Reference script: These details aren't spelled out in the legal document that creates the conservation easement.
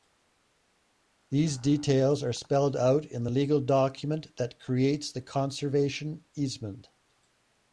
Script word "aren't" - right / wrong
wrong